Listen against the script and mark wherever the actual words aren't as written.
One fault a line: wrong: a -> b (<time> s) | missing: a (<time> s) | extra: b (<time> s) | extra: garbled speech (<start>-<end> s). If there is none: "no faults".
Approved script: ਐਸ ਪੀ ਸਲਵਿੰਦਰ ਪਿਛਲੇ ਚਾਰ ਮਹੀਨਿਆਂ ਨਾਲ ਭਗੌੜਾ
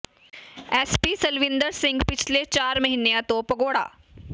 extra: ਸਿੰਘ (1.7 s)
wrong: ਨਾਲ -> ਤੋਂ (3.2 s)